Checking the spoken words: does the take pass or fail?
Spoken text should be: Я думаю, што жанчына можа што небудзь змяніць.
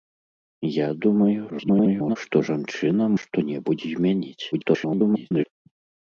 fail